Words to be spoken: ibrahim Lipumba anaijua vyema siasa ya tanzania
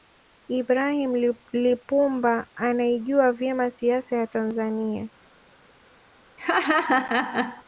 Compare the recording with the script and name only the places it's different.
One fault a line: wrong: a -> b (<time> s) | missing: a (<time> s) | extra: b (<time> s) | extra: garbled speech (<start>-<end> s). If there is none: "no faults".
no faults